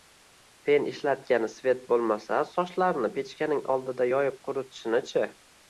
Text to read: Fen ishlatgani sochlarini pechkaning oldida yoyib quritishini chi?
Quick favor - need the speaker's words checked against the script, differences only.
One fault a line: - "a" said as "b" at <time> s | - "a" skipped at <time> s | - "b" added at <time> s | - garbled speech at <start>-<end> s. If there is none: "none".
- "svet bo‘lmasa" added at 1.6 s